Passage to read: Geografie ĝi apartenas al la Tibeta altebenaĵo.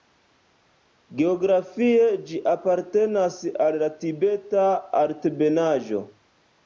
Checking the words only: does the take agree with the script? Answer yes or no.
yes